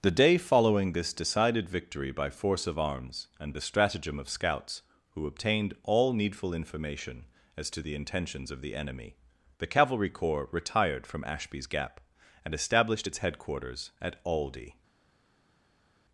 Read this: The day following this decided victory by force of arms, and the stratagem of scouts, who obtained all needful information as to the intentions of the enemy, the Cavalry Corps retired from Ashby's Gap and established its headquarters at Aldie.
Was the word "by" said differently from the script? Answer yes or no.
no